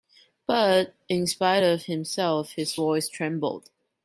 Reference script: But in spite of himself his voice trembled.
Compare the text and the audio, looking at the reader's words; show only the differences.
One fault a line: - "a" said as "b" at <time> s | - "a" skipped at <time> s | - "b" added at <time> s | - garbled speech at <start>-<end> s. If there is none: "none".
none